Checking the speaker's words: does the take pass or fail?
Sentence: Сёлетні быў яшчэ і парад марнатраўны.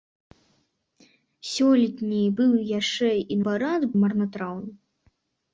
pass